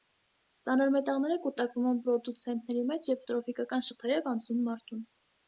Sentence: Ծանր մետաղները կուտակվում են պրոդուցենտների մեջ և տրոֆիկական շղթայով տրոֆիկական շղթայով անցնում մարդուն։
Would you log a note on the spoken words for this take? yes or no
yes